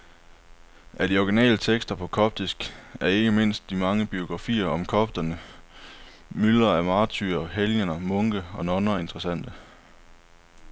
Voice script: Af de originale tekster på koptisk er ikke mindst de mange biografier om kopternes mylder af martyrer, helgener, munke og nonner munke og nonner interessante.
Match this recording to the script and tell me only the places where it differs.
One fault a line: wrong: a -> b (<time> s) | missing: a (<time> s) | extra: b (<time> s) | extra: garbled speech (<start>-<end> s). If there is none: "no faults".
missing: munke og nonner (9.0 s)